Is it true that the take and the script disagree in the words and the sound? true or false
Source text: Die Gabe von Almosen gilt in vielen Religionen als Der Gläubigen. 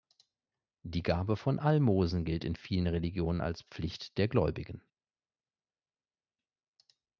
true